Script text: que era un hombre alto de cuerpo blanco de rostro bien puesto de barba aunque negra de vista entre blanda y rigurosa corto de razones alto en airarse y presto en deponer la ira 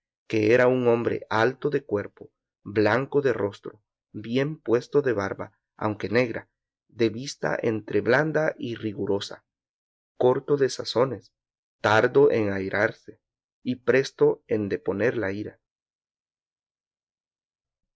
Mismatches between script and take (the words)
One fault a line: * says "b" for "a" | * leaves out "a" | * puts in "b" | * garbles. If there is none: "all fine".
* says "tardo" for "alto"